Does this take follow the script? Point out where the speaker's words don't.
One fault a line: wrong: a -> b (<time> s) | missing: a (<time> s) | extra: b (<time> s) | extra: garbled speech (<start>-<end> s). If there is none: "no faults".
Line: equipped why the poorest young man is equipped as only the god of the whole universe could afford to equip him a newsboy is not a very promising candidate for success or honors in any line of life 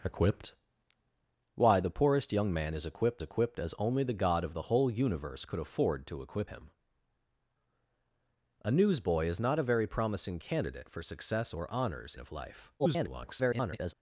extra: equipped (3.2 s)
missing: in any line (12.1 s)
extra: garbled speech (12.8-13.9 s)